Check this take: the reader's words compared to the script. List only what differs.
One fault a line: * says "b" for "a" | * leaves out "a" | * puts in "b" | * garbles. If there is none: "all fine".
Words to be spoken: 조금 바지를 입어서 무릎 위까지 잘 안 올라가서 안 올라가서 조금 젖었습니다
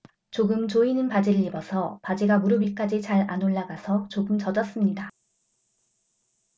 * puts in "조이는"
* puts in "바지가"
* leaves out "안 올라가서"